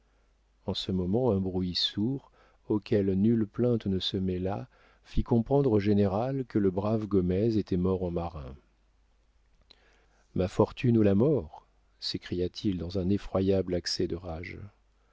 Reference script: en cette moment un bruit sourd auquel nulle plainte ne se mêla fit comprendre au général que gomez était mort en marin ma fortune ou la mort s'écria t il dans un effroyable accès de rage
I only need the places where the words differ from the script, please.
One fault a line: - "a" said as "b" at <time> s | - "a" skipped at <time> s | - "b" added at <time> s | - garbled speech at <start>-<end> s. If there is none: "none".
- "cette" said as "ce" at 0.7 s
- "le brave" added at 6.6 s